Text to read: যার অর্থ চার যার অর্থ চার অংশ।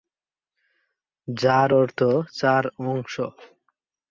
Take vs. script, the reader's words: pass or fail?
fail